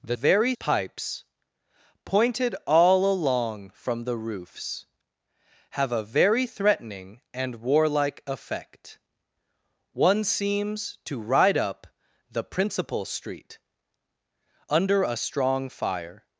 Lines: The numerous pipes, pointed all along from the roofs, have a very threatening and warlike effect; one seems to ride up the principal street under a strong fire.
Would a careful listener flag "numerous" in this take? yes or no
yes